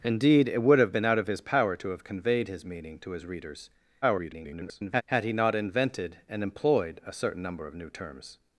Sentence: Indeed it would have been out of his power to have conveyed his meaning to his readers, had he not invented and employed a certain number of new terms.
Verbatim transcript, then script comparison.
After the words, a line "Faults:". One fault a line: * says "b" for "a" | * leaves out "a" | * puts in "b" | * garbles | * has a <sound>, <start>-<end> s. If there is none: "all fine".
Indeed it would have been out of his power to have conveyed his meaning to his readers, [garbled] had he not invented and employed a certain number of new terms.
Faults:
* garbles